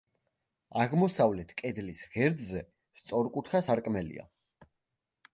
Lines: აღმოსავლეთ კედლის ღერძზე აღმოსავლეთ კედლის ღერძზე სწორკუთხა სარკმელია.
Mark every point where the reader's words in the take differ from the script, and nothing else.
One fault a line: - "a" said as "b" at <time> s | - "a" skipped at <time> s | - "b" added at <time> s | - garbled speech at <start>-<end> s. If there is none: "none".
- "აღმოსავლეთ კედლის ღერძზე" skipped at 2.6 s